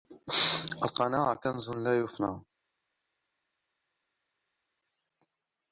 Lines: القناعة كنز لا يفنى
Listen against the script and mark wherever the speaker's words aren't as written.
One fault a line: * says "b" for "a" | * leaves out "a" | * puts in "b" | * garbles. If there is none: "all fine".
all fine